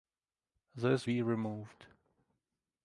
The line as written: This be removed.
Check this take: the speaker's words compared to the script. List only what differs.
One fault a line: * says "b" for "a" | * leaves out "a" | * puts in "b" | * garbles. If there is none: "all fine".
all fine